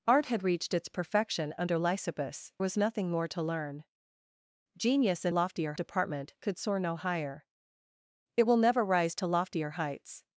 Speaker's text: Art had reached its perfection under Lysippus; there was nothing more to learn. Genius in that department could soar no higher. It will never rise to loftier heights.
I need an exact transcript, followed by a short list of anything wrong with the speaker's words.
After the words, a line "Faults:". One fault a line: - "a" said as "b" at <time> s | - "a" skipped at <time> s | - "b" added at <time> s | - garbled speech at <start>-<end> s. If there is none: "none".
Art had reached its perfection under Lysippus; was nothing more to learn. Genius in loftier department could soar no higher. It will never rise to loftier heights.
Faults:
- "there" skipped at 2.5 s
- "that" said as "loftier" at 5.3 s